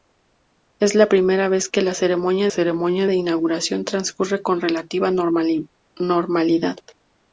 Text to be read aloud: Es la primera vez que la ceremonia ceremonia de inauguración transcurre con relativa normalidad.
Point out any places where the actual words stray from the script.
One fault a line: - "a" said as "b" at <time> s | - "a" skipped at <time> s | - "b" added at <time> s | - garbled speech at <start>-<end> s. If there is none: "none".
none